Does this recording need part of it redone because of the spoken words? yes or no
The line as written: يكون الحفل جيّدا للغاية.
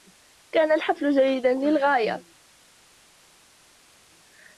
yes